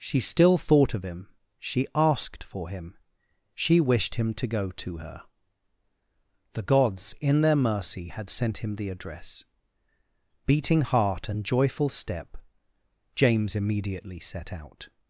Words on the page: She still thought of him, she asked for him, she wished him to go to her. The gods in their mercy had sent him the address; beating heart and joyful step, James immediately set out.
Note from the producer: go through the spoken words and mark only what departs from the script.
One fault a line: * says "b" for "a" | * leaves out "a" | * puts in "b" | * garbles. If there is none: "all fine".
all fine